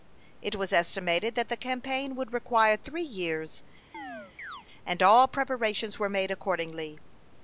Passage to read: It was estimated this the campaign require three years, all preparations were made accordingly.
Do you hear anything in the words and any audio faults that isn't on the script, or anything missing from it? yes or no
yes